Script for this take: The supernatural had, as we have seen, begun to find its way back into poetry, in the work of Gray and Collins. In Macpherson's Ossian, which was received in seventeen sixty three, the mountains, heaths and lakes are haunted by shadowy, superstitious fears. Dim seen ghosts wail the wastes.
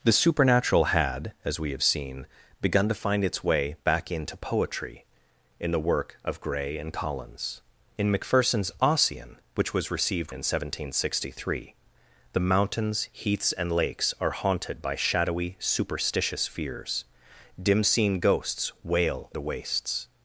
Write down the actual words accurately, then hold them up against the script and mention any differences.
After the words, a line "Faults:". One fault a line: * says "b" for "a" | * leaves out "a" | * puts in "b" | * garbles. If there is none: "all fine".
The supernatural had, as we have seen, begun to find its way back into poetry, in the work of Gray and Collins. In Macpherson's Ossian, which was received in seventeen sixty three, the mountains, heaths and lakes are haunted by shadowy, superstitious fears. Dim seen ghosts wail the wastes.
Faults:
all fine